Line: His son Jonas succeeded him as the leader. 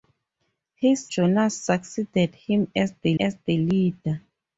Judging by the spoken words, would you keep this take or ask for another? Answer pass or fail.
fail